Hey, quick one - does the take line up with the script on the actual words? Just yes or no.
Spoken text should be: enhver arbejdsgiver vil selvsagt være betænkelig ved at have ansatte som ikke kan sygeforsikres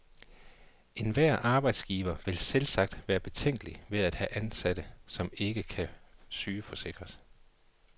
yes